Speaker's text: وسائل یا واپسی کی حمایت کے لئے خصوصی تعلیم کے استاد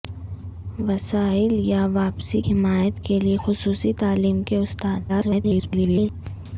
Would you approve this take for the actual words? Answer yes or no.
no